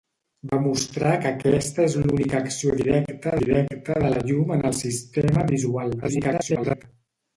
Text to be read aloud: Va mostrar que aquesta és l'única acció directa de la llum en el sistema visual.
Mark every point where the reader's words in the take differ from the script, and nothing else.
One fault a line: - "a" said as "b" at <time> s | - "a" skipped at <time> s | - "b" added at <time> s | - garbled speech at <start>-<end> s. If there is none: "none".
- "directa" added at 3.4 s
- garbled speech at 6.0-6.8 s